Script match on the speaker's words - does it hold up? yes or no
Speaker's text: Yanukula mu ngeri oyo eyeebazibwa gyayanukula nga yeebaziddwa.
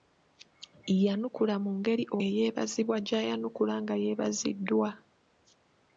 no